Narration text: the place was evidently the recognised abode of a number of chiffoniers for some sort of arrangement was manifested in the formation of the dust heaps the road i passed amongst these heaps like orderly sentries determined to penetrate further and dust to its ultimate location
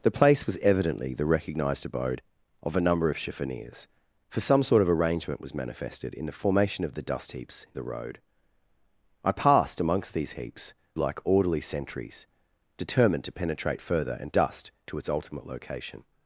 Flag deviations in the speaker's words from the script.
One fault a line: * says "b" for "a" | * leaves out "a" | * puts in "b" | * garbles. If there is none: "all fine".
all fine